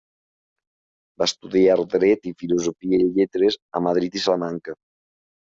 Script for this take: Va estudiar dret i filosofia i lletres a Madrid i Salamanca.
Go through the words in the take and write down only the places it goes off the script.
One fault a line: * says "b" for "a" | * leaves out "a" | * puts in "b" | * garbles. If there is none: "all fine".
all fine